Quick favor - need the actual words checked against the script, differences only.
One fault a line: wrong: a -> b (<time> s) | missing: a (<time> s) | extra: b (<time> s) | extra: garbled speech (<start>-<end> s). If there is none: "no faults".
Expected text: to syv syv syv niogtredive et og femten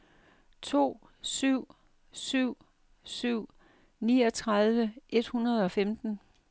extra: hundrede (5.3 s)